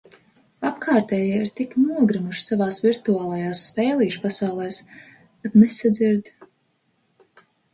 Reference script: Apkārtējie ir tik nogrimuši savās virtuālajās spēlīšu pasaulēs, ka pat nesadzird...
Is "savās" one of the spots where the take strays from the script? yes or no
no